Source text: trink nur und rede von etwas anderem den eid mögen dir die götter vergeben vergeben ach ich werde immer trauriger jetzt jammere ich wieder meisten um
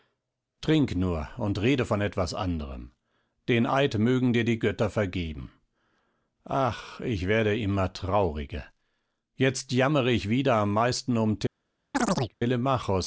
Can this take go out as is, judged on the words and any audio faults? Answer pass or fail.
fail